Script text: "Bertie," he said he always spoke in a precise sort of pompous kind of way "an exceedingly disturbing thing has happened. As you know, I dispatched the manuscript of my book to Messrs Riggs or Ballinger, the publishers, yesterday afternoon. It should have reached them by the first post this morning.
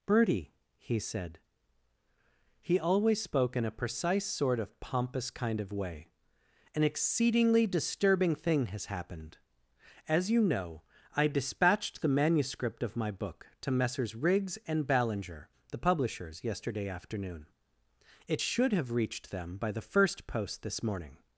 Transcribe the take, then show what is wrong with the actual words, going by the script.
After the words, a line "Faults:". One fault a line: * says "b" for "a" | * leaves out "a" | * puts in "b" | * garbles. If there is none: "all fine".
"Bertie," he said he always spoke in a precise sort of pompous kind of way "an exceedingly disturbing thing has happened. As you know, I dispatched the manuscript of my book to Messrs Riggs and Ballinger, the publishers, yesterday afternoon. It should have reached them by the first post this morning.
Faults:
* says "and" for "or"